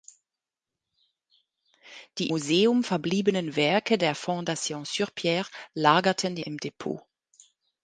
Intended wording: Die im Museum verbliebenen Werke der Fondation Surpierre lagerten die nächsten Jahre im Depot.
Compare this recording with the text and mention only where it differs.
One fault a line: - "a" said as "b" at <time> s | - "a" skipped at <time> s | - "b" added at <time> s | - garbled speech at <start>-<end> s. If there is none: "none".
- "im" skipped at 2.3 s
- "nächsten Jahre" skipped at 6.4 s